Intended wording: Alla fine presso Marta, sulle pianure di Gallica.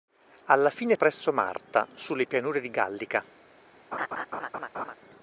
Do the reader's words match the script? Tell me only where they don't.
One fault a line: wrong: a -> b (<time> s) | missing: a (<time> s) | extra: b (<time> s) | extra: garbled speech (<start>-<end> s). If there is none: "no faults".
no faults